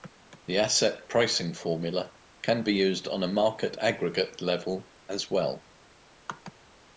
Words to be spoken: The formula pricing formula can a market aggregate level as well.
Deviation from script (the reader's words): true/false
true